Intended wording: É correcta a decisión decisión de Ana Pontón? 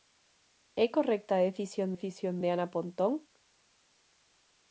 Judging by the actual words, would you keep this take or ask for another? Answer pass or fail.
pass